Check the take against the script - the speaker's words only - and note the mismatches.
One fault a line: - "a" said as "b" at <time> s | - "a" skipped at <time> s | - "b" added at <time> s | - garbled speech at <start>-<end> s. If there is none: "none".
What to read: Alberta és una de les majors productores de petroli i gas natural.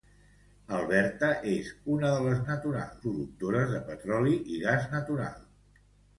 - "majors" said as "natural" at 2.5 s